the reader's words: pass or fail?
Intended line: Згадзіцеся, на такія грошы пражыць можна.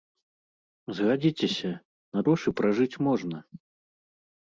fail